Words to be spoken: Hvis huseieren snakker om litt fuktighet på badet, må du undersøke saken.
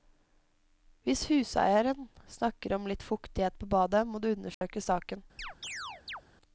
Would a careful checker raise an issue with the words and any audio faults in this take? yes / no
yes